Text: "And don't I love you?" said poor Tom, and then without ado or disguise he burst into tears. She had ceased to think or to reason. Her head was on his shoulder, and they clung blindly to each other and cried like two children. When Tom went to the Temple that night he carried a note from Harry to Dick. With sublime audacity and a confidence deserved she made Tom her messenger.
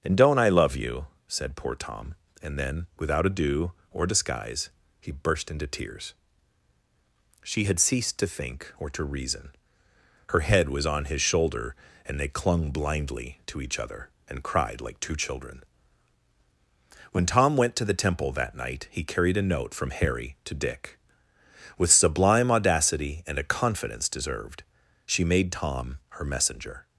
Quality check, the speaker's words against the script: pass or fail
pass